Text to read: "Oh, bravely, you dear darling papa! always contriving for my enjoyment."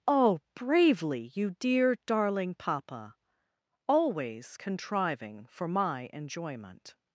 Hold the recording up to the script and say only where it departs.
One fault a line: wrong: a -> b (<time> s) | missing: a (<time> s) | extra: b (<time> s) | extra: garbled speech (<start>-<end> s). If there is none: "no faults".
no faults